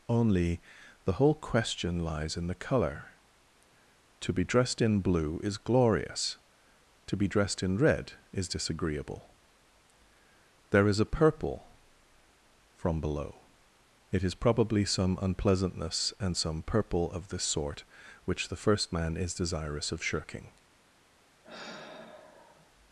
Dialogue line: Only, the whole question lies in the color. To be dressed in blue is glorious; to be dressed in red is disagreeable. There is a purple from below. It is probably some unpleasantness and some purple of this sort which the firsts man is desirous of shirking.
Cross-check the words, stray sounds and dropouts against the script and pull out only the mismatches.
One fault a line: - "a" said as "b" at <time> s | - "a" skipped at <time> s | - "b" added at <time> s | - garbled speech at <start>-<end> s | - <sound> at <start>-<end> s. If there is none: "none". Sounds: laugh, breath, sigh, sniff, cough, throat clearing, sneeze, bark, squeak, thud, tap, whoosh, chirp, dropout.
- "firsts" said as "first" at 18.6 s
- sigh at 21.4-22.7 s